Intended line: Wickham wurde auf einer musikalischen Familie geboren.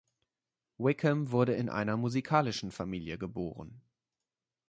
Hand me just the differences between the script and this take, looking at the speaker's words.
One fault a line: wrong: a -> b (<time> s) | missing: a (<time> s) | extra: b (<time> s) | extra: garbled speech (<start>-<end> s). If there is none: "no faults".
wrong: auf -> in (1.5 s)